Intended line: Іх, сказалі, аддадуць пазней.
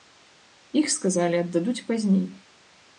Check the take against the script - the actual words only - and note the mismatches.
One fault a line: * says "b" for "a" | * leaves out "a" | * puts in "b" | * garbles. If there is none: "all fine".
all fine